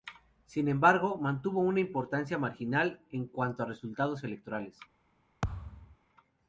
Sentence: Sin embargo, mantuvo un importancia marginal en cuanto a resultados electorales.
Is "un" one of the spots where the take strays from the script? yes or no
yes